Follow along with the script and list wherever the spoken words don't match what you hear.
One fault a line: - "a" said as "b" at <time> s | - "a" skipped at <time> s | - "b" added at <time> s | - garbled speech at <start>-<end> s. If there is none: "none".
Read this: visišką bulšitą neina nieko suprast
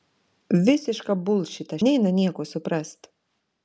none